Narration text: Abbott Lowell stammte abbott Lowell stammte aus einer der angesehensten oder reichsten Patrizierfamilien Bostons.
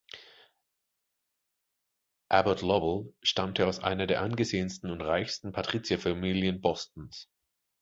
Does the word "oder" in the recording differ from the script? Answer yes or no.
yes